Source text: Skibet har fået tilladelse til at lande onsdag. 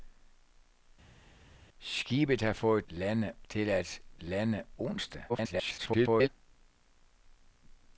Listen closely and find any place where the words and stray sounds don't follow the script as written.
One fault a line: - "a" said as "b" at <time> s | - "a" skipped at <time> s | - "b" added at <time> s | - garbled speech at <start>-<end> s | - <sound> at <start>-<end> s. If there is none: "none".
- "tilladelse" said as "lande" at 2.9 s
- garbled speech at 5.3-6.3 s